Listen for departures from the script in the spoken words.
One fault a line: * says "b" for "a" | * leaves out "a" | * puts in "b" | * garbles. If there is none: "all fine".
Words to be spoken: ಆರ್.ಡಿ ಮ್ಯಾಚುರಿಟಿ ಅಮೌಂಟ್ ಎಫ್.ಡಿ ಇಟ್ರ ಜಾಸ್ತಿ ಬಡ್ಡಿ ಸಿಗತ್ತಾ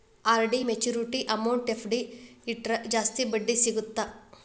all fine